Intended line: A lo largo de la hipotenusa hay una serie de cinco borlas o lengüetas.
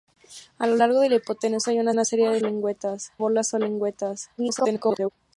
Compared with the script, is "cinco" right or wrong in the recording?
wrong